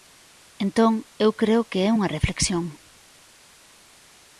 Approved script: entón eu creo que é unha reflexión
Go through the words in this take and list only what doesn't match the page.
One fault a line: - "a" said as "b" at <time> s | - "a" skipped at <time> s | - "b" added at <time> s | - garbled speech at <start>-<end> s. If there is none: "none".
none